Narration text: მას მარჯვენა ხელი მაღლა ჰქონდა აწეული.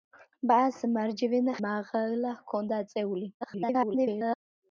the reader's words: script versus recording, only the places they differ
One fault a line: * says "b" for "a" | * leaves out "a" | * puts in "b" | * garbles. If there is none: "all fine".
* leaves out "ხელი"
* garbles